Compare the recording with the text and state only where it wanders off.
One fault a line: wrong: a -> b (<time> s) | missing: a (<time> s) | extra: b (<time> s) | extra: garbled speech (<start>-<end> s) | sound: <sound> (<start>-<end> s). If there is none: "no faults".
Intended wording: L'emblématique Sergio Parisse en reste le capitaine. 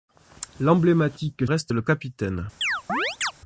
missing: Sergio Parisse en (1.5 s)
sound: chirp (2.6-3.3 s)